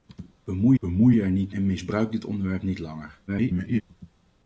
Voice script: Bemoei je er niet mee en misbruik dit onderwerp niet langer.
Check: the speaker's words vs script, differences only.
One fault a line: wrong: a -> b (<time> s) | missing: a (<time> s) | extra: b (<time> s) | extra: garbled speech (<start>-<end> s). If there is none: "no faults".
extra: bemoei (0.8 s)
missing: mee (1.5 s)
extra: garbled speech (3.3-3.8 s)